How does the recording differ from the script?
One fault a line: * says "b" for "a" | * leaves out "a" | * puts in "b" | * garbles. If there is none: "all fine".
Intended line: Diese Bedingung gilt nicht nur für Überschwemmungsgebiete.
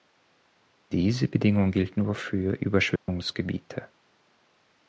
* leaves out "nicht"